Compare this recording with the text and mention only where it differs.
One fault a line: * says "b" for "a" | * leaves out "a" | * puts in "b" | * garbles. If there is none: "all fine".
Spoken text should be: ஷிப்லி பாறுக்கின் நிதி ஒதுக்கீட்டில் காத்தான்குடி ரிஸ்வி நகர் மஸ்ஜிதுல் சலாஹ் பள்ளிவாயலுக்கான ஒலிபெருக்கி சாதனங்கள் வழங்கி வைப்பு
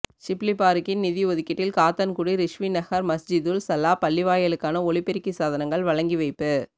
all fine